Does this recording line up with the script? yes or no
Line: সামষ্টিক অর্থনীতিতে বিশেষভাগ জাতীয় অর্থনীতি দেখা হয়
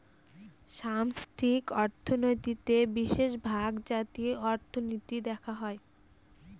yes